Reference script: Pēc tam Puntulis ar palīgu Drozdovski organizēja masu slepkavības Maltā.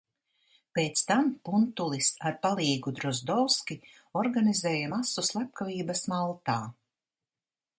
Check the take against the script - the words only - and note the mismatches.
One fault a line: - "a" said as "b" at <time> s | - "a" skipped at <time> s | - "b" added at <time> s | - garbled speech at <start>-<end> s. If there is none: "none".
none